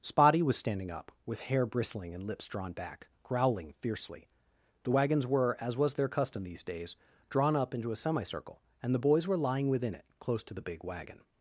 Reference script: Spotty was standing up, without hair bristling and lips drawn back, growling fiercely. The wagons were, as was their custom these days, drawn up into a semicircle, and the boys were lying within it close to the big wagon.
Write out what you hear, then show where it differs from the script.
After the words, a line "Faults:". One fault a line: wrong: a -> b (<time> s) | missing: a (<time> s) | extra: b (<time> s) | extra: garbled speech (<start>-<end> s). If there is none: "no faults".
Spotty was standing up, with hair bristling and lips drawn back, growling fiercely. The wagons were, as was their custom these days, drawn up into a semicircle, and the boys were lying within it close to the big wagon.
Faults:
wrong: without -> with (1.3 s)